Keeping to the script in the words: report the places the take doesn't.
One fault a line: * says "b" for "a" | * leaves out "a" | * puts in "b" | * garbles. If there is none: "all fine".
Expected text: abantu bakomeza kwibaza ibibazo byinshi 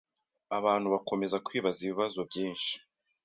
all fine